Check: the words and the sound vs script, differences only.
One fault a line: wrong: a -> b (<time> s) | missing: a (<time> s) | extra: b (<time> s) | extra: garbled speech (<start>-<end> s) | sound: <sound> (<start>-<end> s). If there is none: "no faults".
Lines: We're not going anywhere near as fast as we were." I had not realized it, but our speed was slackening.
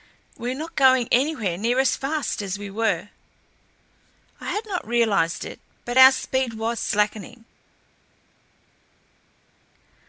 no faults